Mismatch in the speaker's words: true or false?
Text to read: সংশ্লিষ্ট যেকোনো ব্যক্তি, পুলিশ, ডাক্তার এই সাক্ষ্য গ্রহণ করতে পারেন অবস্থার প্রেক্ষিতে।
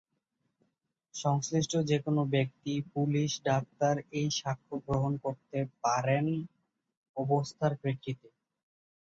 false